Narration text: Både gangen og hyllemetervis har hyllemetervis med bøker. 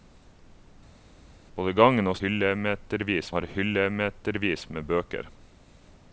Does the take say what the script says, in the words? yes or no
yes